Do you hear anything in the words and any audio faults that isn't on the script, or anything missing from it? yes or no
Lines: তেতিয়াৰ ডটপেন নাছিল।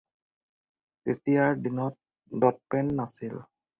yes